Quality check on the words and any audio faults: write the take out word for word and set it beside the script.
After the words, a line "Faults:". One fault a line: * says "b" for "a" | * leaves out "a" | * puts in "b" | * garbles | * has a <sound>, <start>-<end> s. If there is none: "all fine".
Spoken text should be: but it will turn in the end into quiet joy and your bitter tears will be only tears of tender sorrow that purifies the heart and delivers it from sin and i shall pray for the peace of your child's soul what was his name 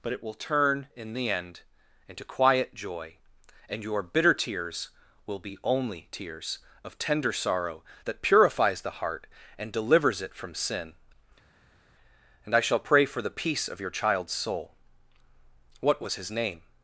but it will turn in the end into quiet joy and your bitter tears will be only tears of tender sorrow that purifies the heart and delivers it from sin and i shall pray for the peace of your child's soul what was his name
Faults:
all fine